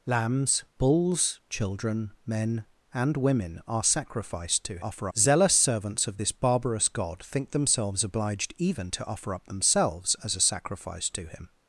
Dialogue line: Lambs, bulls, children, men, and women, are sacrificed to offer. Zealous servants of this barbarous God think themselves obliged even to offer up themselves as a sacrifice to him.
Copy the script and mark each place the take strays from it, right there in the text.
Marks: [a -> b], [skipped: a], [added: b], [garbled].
Lambs, bulls, children, men, and women, are sacrificed to offer. Zealous servants of this barbarous God think themselves obliged even to offer up themselves as a sacrifice to him.